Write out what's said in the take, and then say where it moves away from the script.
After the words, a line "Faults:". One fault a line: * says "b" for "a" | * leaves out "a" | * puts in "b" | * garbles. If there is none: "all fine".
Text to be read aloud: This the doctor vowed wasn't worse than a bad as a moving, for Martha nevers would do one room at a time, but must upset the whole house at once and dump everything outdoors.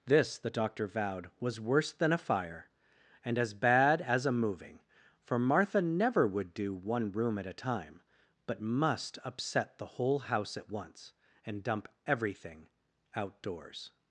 This the doctor vowed was worse than a fire and as bad as a moving, for Martha never would do one room at a time, but must upset the whole house at once and dump everything outdoors.
Faults:
* says "was" for "wasn't"
* puts in "fire and as"
* says "never" for "nevers"